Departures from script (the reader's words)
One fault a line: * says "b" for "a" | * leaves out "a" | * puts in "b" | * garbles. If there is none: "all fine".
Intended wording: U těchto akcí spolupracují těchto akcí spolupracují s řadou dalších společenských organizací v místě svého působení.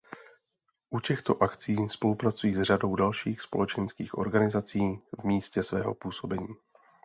* leaves out "těchto akcí spolupracují"